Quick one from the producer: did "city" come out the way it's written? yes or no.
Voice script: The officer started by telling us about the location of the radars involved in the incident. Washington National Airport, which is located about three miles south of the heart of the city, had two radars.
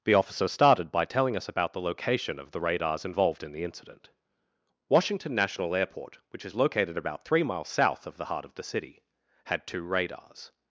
yes